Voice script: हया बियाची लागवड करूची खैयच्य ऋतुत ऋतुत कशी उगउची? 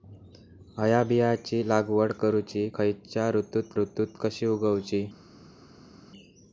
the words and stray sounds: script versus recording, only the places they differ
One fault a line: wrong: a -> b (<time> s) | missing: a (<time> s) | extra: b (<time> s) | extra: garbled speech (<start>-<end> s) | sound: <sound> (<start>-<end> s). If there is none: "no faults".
no faults